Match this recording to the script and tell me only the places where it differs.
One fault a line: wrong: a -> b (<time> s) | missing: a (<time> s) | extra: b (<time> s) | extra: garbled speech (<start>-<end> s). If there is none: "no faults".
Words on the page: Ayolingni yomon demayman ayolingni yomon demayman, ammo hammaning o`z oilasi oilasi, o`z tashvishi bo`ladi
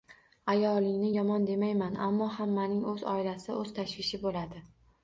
missing: ayolingni yomon demayman (2.0 s)
missing: oilasi (3.5 s)